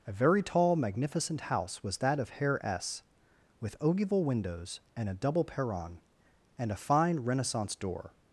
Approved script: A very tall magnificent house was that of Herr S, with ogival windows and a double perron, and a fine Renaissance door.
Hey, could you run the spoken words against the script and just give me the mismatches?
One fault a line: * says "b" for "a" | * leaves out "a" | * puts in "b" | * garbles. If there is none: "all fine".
all fine